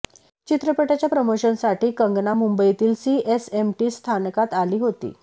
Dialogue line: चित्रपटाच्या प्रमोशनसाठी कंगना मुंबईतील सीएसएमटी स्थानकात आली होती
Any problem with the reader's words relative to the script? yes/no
no